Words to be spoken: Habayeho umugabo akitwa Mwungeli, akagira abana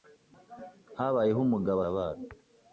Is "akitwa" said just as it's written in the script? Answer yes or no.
no